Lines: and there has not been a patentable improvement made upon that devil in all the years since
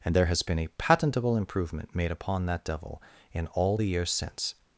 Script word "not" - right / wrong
wrong